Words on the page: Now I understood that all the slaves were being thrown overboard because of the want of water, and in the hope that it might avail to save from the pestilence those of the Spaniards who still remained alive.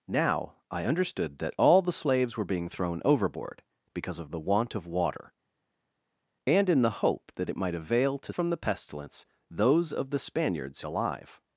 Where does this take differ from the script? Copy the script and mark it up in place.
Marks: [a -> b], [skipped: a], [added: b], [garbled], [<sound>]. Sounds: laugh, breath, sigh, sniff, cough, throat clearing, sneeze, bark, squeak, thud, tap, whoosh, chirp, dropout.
Now I understood that all the slaves were being thrown overboard because of the want of water, and in the hope that it might avail to [skipped: save] from the pestilence those of the Spaniards [skipped: who still remained] alive.